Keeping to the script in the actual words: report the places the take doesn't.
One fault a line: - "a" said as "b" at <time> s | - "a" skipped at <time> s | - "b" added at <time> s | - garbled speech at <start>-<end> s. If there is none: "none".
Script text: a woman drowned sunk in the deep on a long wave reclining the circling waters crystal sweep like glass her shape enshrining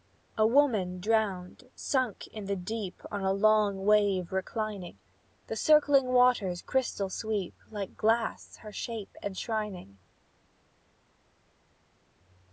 none